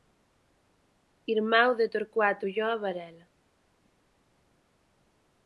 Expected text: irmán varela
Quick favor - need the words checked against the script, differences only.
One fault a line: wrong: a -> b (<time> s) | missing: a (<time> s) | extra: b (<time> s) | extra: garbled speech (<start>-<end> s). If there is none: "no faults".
extra: de torcuato ulloa (1.8 s)